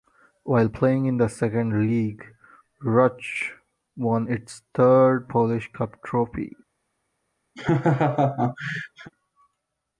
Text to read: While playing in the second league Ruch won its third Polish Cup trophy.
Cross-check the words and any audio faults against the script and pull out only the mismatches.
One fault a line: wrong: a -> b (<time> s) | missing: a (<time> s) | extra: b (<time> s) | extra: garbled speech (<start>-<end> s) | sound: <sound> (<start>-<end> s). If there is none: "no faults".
sound: laugh (7.6-9.1 s)